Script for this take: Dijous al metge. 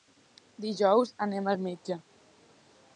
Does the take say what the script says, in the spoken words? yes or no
no